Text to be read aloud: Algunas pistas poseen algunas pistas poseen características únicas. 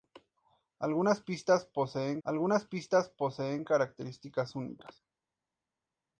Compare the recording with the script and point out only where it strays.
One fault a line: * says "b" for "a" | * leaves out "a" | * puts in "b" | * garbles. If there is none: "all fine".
all fine